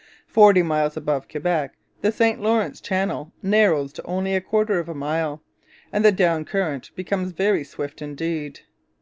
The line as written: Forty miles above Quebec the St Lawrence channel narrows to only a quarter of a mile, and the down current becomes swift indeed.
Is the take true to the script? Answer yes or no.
no